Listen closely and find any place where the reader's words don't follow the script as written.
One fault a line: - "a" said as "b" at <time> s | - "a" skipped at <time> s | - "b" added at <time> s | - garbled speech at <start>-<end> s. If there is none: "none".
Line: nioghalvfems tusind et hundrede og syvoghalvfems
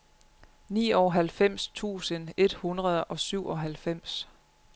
none